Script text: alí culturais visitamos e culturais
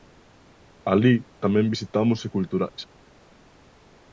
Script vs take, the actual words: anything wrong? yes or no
yes